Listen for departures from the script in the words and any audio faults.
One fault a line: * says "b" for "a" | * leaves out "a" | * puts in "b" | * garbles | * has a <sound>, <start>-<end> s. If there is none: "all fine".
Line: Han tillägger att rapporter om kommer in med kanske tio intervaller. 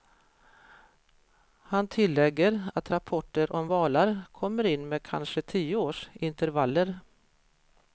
* puts in "valar"
* puts in "års"